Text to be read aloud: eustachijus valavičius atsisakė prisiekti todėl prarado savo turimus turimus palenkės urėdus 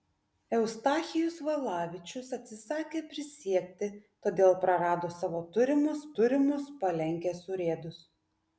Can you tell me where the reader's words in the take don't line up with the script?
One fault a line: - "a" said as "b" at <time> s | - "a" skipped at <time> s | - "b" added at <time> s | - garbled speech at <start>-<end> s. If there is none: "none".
none